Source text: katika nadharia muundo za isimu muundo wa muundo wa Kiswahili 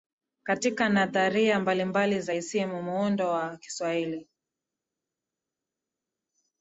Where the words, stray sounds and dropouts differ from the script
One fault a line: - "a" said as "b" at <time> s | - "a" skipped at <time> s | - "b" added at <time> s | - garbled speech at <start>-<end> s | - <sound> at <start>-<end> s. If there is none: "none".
- "muundo" said as "mbalimbali" at 1.6 s
- "muundo wa" skipped at 3.6 s